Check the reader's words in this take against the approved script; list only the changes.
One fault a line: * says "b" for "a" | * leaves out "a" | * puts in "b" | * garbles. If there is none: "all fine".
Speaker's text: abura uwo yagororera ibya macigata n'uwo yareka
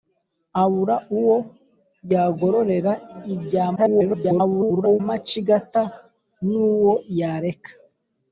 * garbles